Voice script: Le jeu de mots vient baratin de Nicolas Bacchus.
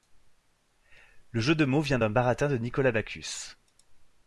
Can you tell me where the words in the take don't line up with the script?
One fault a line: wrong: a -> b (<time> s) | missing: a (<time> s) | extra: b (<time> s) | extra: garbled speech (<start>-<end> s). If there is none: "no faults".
extra: d'un (2.0 s)